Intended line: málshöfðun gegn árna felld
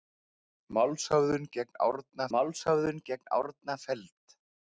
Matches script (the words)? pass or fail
fail